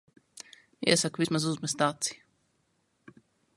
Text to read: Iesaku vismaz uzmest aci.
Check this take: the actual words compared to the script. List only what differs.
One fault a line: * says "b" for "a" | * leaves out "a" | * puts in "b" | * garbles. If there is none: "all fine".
all fine